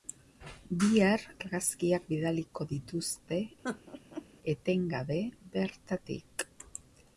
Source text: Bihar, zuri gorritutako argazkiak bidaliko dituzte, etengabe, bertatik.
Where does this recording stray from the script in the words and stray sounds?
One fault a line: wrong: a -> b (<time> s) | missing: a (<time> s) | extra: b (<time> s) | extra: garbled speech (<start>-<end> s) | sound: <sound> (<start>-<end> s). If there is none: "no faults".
missing: zuri gorritutako (1.2 s)
sound: laugh (3.6-4.2 s)